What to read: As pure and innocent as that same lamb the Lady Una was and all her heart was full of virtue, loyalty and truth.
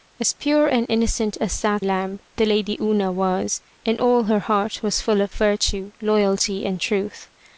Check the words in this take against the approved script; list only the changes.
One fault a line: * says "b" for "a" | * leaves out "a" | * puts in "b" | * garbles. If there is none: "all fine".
* leaves out "same"